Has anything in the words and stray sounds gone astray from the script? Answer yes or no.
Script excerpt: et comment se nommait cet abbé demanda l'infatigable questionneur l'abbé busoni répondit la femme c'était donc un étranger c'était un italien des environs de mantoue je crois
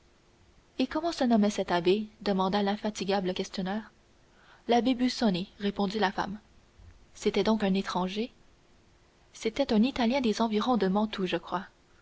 no